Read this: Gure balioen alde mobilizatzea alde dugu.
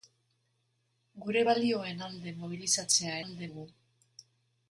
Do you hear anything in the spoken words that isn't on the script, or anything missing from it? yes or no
no